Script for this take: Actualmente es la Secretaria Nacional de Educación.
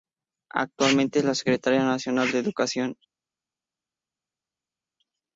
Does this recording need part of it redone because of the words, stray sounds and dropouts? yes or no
no